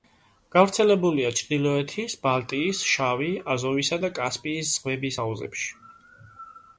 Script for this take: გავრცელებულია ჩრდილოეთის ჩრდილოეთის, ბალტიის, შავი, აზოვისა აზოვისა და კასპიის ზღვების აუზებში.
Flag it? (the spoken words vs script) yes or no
yes